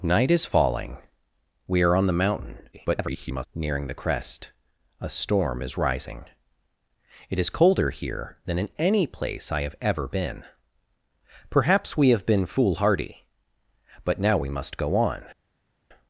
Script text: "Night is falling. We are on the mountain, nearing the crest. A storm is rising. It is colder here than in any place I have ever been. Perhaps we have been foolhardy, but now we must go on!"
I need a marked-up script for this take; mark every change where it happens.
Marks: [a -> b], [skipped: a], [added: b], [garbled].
"Night is falling. We are on the mountain, [garbled] nearing the crest. A storm is rising. It is colder here than in any place I have ever been. Perhaps we have been foolhardy, but now we must go on!"